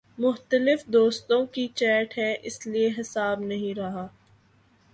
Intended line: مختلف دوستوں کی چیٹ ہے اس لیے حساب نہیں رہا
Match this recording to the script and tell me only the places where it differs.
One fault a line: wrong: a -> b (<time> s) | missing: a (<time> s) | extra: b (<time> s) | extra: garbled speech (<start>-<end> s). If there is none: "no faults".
no faults